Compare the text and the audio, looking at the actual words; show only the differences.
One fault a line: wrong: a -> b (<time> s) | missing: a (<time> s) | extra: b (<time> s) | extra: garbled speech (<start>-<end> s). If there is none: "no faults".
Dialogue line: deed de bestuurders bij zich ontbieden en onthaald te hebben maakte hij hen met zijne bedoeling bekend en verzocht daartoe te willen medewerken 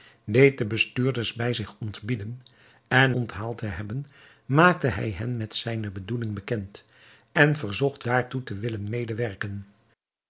no faults